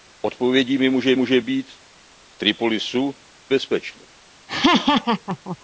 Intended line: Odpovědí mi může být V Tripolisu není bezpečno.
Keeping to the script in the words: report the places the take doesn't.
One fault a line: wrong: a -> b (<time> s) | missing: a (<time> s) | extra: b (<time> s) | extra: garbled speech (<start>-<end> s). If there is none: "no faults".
extra: může (1.1 s)
missing: není (3.2 s)